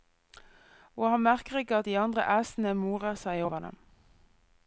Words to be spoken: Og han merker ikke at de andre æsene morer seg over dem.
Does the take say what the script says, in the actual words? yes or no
yes